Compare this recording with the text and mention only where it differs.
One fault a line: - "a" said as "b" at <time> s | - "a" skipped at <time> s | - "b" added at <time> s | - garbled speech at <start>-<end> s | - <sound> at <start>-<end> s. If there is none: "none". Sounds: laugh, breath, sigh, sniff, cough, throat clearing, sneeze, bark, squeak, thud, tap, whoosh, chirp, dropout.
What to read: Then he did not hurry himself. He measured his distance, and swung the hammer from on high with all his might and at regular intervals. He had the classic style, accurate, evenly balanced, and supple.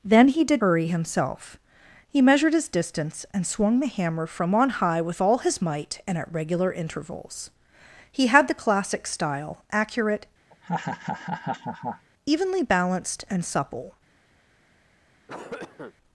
- "not" skipped at 0.6 s
- laugh at 10.5-12.1 s
- cough at 15.3-15.9 s